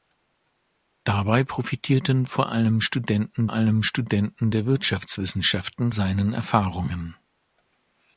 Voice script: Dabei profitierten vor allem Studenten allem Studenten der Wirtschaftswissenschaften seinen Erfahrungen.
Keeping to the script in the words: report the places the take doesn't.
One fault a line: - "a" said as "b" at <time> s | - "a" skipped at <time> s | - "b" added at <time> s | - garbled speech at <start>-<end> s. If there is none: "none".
none